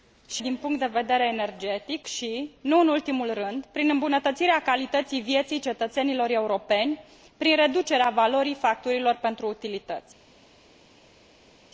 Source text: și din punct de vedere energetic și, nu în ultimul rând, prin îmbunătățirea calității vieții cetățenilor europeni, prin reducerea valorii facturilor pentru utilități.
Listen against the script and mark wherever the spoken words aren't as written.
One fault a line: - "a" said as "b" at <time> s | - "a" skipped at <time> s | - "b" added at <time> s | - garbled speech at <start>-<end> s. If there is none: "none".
none